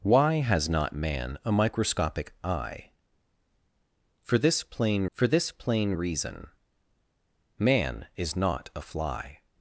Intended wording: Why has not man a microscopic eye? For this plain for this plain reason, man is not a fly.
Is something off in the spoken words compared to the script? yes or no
no